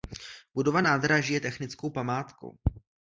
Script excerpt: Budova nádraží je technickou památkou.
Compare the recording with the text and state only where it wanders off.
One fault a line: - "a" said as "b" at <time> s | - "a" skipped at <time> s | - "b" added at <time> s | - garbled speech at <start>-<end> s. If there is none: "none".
none